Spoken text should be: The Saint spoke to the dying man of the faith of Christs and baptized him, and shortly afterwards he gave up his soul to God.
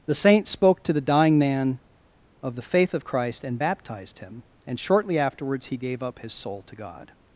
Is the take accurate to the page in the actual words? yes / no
no